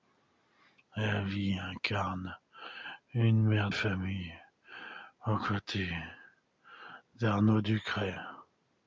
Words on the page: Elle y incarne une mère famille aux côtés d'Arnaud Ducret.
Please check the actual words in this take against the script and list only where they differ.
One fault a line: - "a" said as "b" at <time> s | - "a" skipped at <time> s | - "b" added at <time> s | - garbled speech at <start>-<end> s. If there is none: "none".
none